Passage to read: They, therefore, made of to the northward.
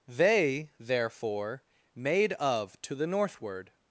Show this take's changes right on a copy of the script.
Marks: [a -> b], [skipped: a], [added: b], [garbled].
They, therefore, made of to the northward.